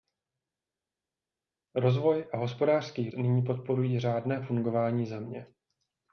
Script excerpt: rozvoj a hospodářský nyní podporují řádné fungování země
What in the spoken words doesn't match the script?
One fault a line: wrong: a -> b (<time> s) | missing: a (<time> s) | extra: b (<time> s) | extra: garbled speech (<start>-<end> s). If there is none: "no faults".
no faults